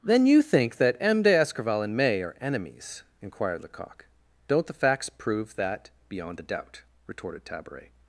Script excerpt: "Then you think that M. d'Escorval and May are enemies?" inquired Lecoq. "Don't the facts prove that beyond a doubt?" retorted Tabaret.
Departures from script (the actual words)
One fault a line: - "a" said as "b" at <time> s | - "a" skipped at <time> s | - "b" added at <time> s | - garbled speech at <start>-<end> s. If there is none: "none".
none